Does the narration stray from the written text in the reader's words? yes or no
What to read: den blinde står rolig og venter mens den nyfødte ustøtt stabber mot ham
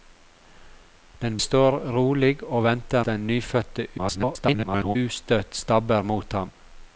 yes